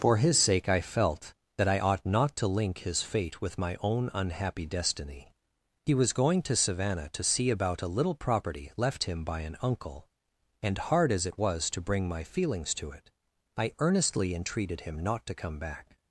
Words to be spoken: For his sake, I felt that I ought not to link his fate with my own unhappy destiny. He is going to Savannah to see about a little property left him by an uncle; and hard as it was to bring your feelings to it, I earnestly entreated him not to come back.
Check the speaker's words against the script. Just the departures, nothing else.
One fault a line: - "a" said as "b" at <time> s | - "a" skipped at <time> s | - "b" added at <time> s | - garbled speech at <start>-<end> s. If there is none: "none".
- "is" said as "was" at 5.9 s
- "your" said as "my" at 12.1 s